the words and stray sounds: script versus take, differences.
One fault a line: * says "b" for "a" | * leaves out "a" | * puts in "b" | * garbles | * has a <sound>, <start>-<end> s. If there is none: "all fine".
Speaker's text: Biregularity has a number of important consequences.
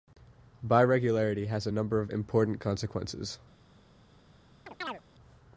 * has a chirp, 4.7-5.0 s